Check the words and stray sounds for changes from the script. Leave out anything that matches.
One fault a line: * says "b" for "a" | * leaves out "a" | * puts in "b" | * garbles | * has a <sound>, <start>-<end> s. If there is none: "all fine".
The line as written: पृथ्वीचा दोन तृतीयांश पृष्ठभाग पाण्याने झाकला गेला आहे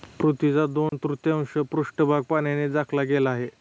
* has a dropout, 0.9-0.9 s